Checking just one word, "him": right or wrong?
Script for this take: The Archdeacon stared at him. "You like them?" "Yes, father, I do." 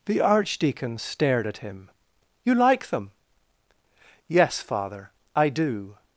right